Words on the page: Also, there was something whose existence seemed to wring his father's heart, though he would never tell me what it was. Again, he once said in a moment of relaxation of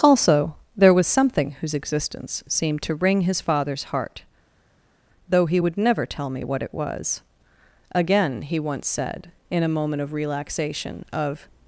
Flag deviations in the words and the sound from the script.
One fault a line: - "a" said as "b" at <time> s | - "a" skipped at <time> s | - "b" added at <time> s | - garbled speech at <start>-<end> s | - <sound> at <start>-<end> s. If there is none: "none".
none